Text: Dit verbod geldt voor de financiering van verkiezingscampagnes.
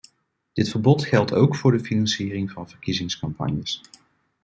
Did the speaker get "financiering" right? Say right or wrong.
right